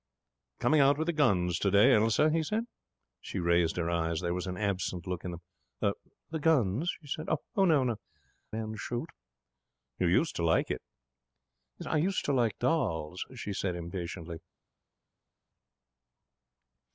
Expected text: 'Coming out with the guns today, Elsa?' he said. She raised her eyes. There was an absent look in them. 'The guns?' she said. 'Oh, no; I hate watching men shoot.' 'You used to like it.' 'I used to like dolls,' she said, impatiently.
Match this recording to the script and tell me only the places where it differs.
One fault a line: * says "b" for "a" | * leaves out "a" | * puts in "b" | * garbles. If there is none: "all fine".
* leaves out "I hate watching"